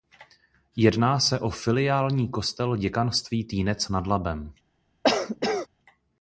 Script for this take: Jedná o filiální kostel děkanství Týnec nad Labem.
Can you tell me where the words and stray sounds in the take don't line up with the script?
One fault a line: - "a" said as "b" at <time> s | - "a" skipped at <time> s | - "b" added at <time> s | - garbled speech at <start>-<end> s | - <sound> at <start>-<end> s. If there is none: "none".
- "se" added at 1.2 s
- cough at 5.0-5.7 s